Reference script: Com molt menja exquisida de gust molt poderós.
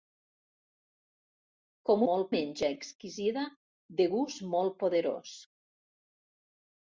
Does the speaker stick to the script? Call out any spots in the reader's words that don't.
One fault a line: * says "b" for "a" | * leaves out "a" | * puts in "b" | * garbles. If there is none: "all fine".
all fine